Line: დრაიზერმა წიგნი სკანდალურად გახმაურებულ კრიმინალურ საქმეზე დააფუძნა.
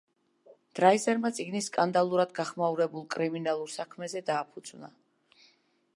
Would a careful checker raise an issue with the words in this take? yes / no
no